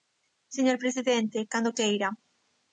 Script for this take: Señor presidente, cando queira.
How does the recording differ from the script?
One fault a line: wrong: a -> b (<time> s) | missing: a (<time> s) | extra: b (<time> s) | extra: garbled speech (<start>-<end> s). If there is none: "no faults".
no faults